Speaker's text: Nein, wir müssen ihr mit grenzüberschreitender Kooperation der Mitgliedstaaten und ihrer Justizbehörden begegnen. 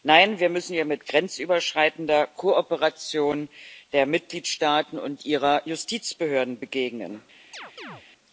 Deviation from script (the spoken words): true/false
false